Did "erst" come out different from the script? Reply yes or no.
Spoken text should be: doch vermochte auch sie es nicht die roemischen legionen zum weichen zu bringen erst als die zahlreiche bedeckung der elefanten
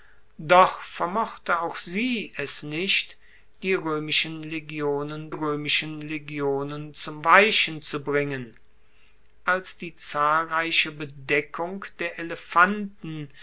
yes